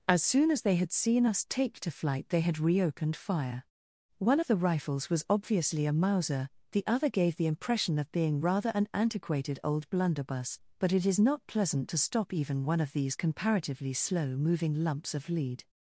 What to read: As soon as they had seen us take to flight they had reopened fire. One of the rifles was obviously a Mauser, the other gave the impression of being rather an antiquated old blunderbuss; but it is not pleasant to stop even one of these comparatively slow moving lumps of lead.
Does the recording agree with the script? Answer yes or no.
yes